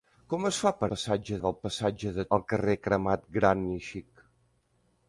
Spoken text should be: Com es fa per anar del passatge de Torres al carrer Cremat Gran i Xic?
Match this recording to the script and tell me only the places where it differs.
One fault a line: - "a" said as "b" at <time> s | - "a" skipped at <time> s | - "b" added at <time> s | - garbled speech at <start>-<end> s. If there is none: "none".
- "anar" said as "passatge" at 0.9 s
- "Torres" skipped at 2.2 s